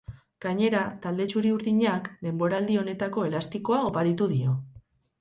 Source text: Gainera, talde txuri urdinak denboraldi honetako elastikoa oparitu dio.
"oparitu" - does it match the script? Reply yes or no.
yes